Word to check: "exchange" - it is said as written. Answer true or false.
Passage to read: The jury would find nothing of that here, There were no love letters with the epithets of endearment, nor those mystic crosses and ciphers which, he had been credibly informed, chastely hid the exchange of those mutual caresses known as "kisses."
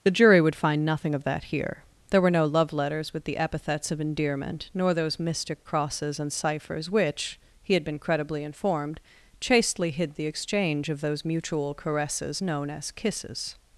true